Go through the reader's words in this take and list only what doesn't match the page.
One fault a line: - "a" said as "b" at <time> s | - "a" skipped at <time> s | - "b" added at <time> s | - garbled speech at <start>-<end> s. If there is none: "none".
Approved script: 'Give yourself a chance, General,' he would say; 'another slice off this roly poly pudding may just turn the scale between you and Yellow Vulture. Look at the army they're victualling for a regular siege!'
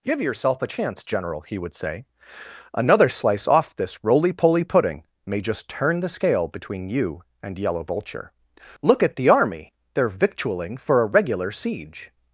none